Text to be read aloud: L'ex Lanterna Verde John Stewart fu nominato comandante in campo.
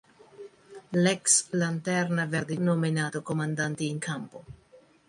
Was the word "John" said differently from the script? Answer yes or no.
yes